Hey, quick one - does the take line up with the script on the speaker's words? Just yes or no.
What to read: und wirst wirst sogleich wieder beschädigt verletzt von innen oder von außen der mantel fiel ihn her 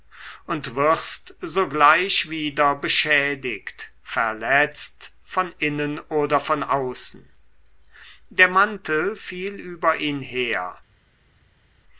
no